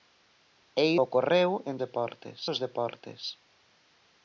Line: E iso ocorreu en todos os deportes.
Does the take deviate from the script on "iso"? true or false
true